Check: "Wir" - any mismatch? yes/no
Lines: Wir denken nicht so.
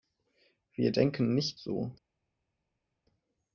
no